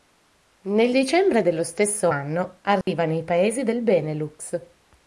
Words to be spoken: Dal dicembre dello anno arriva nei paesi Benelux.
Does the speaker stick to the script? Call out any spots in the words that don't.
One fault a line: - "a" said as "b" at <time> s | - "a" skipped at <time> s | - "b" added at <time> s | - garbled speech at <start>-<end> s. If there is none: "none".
- "Dal" said as "Nel" at 0.6 s
- "stesso" added at 1.6 s
- "del" added at 3.6 s